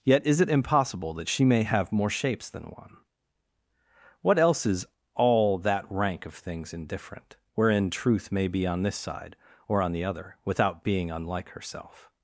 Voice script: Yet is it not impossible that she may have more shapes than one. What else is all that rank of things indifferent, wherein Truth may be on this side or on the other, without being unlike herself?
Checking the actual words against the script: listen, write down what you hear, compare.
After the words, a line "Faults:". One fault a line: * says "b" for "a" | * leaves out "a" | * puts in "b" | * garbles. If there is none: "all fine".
Yet is it impossible that she may have more shapes than one. What else is all that rank of things indifferent, wherein Truth may be on this side or on the other, without being unlike herself?
Faults:
* leaves out "not"